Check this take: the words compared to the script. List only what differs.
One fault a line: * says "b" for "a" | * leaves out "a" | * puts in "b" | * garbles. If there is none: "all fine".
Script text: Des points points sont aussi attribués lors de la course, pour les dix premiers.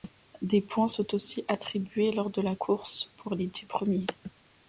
* leaves out "points"